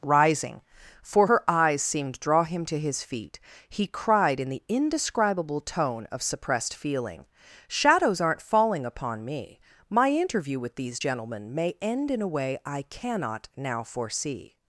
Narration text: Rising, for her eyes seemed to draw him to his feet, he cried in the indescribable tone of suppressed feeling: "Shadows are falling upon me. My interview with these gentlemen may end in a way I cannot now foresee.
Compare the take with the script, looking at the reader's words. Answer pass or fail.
fail